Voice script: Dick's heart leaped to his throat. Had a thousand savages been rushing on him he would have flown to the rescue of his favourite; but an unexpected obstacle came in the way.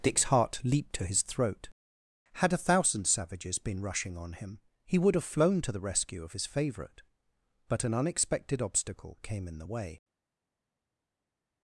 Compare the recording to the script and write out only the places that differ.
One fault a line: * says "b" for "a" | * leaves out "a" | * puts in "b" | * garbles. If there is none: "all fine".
all fine